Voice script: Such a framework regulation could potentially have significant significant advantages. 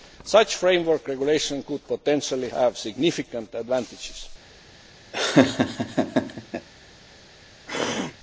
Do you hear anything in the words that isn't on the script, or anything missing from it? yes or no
yes